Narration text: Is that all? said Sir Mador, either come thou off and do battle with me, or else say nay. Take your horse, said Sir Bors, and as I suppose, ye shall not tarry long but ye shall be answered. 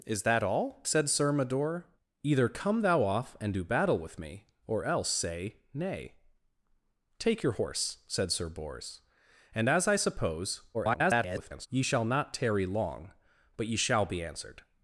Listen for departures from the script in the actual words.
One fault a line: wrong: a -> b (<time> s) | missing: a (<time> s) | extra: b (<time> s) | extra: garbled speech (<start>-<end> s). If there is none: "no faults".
extra: garbled speech (10.7-11.7 s)